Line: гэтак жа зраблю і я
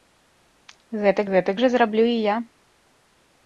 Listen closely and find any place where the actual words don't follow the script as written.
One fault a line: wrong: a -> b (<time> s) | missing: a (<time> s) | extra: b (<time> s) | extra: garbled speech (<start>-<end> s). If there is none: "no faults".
extra: гэтак (1.3 s)